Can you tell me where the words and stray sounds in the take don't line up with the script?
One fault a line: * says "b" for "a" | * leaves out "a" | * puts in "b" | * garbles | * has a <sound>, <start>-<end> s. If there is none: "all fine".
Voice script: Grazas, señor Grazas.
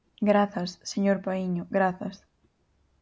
* puts in "Paíño"